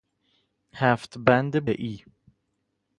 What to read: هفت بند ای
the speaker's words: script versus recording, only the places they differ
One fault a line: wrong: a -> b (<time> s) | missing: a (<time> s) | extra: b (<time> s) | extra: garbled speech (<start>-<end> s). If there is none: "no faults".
no faults